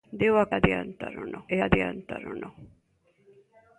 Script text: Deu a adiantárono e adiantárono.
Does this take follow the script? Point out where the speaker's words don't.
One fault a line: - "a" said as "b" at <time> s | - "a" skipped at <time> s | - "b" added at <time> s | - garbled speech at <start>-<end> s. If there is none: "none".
none